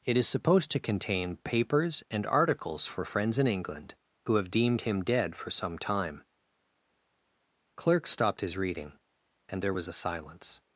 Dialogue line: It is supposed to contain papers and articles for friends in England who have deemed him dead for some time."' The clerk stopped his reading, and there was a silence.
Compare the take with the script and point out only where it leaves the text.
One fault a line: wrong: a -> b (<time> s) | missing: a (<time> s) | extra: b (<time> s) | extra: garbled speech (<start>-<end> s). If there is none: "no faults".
missing: The (6.2 s)